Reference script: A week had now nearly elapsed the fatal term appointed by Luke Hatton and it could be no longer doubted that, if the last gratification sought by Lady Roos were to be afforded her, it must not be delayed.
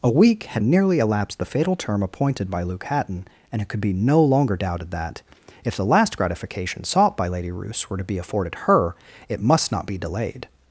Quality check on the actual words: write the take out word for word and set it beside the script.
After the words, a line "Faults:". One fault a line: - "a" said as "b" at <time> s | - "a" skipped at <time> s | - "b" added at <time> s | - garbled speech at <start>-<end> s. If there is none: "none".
A week had nearly elapsed the fatal term appointed by Luke Hatton and it could be no longer doubted that, if the last gratification sought by Lady Roos were to be afforded her, it must not be delayed.
Faults:
- "now" skipped at 0.6 s